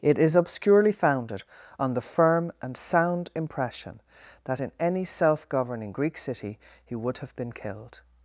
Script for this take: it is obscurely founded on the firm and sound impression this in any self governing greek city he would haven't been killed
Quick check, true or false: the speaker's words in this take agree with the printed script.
false